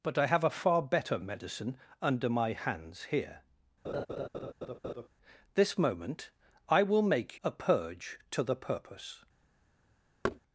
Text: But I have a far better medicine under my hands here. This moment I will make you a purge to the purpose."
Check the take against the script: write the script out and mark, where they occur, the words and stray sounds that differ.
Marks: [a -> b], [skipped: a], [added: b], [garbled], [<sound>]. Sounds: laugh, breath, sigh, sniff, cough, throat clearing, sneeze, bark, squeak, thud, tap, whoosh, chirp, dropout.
But I have a far better medicine under my hands here. [laugh] This moment I will make [skipped: you] a purge to the purpose." [thud]